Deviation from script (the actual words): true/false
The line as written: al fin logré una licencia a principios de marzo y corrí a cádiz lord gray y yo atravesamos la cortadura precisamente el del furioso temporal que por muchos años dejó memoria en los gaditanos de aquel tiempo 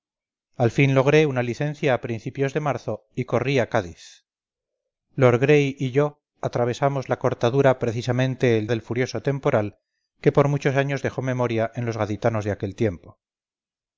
false